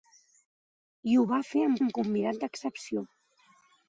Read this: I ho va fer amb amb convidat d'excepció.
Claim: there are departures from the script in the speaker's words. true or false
false